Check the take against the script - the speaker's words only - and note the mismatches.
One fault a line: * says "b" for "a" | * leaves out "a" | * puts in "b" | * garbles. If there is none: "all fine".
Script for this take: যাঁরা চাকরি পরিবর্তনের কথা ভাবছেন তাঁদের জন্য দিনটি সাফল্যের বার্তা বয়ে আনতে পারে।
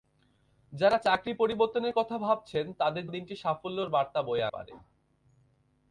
* leaves out "জন্য"
* leaves out "আনতে"